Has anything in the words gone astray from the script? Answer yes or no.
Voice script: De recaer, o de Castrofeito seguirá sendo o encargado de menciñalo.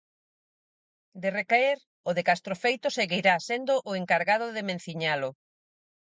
no